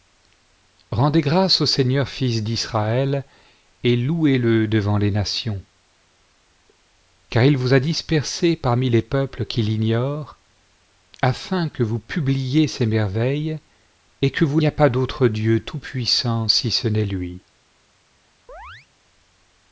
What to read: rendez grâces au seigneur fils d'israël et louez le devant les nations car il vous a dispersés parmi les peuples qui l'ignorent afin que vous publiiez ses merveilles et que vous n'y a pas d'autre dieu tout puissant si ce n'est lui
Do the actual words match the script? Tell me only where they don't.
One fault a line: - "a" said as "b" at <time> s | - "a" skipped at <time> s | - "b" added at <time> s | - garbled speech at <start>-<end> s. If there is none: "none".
none